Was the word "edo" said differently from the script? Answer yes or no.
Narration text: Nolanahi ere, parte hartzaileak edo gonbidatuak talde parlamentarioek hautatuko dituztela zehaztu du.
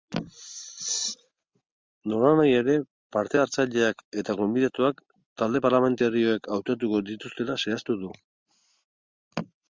yes